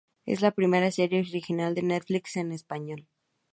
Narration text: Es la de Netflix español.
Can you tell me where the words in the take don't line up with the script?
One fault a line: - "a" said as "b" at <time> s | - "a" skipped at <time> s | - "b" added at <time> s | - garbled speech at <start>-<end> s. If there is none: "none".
- "primera serie original" added at 0.5 s
- "en" added at 2.4 s